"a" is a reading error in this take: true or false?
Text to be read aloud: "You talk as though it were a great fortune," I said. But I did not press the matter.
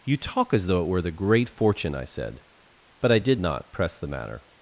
true